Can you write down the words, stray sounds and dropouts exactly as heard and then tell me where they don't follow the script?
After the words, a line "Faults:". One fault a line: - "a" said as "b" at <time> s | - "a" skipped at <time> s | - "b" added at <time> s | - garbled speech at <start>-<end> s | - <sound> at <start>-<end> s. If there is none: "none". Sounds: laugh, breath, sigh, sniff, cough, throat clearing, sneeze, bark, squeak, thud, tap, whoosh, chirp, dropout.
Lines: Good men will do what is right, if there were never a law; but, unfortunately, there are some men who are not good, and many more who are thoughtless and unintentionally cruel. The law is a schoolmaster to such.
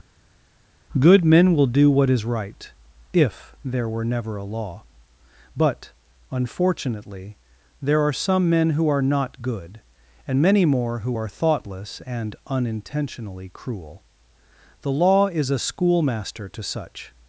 Good men will do what is right, if there were never a law; but, unfortunately, there are some men who are not good, and many more who are thoughtless and unintentionally cruel. The law is a schoolmaster to such.
Faults:
none